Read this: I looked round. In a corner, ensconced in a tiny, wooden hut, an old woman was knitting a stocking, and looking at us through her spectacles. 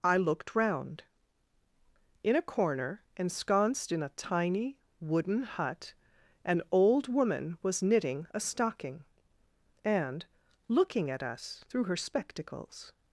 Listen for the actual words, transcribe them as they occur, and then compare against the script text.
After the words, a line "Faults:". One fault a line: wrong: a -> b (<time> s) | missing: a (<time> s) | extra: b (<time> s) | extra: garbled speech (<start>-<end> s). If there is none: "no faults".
I looked round. In a corner, ensconced in a tiny, wooden hut, an old woman was knitting a stocking, and looking at us through her spectacles.
Faults:
no faults